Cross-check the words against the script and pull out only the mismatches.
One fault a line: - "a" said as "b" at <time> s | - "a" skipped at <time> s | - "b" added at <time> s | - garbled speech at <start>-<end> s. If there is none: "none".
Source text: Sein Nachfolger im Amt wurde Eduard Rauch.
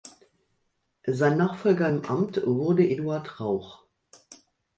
none